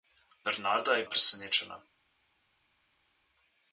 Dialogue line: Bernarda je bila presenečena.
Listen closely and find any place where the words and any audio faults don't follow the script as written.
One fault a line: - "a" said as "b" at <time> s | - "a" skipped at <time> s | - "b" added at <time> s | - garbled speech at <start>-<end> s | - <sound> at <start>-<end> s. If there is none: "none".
- "bila" skipped at 1.0 s